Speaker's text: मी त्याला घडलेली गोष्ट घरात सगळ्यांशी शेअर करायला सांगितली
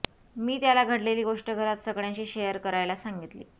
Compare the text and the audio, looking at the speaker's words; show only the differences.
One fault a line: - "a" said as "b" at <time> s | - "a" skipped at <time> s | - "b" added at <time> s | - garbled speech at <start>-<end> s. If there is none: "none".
none